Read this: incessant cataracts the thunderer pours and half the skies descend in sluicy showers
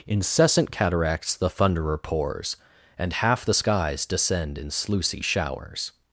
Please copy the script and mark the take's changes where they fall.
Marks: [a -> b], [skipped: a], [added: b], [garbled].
incessant cataracts the thunderer pours and half the skies descend in sluicy showers